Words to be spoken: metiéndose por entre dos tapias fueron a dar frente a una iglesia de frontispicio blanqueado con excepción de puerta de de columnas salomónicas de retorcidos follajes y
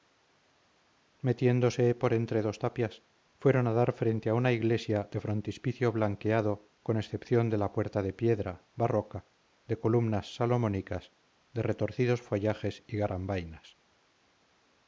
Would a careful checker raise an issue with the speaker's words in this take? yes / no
yes